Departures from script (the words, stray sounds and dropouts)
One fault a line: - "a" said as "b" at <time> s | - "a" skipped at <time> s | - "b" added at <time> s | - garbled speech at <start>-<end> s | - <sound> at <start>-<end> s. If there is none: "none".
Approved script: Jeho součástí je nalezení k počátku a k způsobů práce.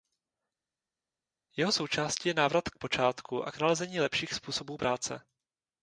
- "nalezení" said as "návrat" at 2.3 s
- "nalezení lepších" added at 3.6 s